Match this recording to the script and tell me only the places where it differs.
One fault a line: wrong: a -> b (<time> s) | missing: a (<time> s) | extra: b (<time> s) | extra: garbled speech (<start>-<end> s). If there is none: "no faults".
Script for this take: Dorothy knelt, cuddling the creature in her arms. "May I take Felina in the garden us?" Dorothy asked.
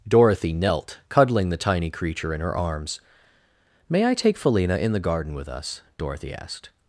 extra: tiny (1.6 s)
extra: with (5.3 s)